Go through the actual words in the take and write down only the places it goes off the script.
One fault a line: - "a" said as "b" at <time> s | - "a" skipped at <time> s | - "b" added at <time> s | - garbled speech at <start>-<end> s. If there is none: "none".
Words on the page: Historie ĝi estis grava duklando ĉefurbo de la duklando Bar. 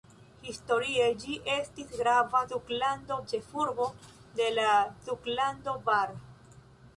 none